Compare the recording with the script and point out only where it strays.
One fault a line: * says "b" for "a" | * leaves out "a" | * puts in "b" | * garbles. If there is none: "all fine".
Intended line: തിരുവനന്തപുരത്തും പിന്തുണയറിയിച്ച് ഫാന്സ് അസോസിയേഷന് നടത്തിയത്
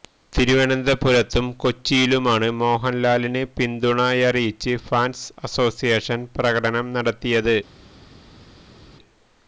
* puts in "കൊച്ചിയിലുമാണ് മോഹന്ലാലിന്"
* puts in "പ്രകടനം"